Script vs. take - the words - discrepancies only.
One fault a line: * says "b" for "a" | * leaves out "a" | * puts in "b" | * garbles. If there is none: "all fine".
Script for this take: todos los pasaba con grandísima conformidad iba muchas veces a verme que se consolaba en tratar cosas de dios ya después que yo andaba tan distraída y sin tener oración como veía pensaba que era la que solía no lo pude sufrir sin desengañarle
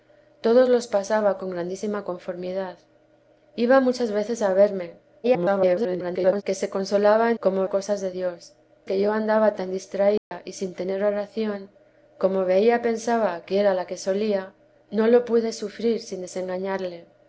* garbles
* says "como" for "tratar"
* leaves out "ya después"